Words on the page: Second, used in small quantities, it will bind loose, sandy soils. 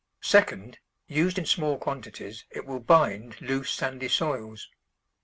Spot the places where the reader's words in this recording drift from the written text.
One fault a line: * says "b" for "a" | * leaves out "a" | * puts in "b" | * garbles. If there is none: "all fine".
all fine